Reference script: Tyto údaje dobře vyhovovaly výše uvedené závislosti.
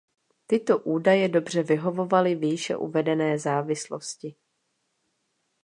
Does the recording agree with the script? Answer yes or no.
yes